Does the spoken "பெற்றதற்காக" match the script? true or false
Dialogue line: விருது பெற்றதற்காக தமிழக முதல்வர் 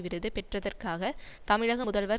true